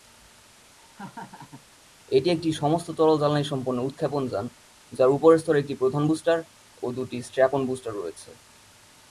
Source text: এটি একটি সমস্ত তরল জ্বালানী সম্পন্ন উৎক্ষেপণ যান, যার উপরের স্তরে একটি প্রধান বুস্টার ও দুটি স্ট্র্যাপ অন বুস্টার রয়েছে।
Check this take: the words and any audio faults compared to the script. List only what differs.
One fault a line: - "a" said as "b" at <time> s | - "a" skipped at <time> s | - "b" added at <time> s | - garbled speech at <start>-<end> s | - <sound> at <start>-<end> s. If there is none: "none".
- laugh at 0.7-1.7 s